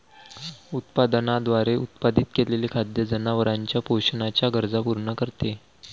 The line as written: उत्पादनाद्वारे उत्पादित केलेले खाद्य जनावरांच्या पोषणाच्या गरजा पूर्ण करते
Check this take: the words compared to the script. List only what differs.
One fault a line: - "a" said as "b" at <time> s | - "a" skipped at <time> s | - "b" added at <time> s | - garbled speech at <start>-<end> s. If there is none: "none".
none